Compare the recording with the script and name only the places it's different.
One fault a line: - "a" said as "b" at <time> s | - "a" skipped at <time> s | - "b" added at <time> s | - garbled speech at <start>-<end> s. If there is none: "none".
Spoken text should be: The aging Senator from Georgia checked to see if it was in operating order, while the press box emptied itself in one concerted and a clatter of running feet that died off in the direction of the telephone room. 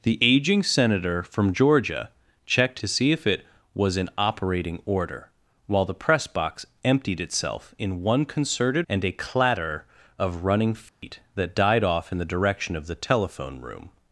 none